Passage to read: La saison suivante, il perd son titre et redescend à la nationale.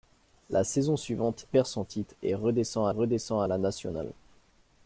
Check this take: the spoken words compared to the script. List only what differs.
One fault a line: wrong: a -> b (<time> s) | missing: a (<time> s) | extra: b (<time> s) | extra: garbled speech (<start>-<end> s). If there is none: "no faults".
missing: il (1.4 s)
extra: redescend (2.9 s)